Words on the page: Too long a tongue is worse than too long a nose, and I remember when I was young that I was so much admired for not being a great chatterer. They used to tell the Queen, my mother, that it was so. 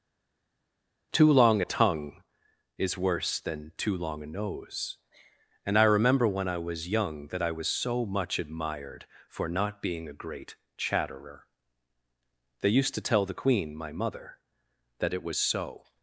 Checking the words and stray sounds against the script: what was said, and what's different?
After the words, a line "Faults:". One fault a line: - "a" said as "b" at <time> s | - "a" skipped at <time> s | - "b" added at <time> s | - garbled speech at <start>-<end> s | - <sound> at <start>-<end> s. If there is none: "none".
Too long a tongue is worse than too long a nose, and I remember when I was young that I was so much admired for not being a great chatterer. They used to tell the Queen, my mother, that it was so.
Faults:
none